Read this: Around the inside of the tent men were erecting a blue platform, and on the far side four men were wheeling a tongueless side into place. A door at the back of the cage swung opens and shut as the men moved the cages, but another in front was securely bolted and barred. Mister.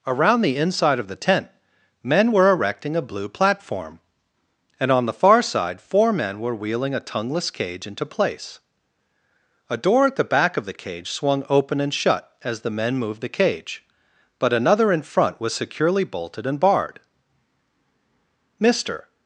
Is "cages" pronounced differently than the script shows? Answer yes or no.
yes